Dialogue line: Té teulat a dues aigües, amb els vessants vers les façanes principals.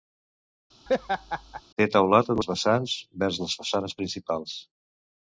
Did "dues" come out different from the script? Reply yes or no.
yes